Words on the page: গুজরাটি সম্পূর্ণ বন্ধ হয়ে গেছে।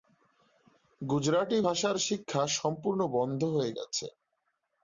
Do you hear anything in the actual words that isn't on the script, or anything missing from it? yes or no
yes